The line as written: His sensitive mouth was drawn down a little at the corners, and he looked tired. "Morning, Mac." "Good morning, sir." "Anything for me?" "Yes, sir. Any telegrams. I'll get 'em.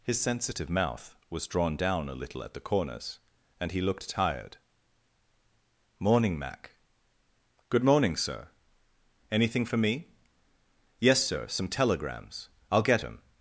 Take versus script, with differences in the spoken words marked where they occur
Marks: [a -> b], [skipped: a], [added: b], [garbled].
His sensitive mouth was drawn down a little at the corners, and he looked tired. "Morning, Mac." "Good morning, sir." "Anything for me?" "Yes, sir. [Any -> Some] telegrams. I'll get 'em.